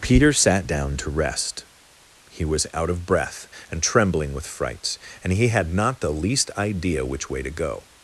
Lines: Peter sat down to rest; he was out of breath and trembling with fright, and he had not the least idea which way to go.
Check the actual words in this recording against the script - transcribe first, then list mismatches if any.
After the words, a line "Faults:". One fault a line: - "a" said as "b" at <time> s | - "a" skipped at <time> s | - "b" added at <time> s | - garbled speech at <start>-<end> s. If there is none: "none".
Peter sat down to rest; he was out of breath and trembling with frights, and he had not the least idea which way to go.
Faults:
- "fright" said as "frights" at 4.5 s